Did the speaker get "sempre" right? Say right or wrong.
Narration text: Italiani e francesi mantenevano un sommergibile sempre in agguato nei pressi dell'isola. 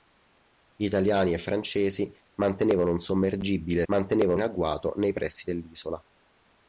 wrong